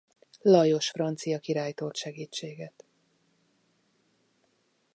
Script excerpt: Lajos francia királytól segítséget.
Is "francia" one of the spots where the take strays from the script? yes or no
no